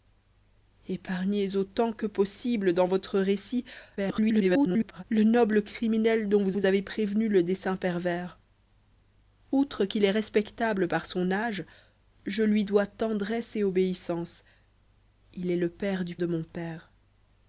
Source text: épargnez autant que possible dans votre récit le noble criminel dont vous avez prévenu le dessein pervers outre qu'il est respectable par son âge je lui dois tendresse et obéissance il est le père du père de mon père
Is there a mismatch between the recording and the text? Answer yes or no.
yes